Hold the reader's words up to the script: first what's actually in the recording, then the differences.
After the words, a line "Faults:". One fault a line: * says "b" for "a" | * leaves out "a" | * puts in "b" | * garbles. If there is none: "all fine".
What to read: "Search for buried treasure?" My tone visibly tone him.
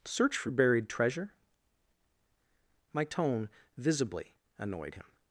"Search for buried treasure?" My tone visibly annoyed him.
Faults:
* says "annoyed" for "tone"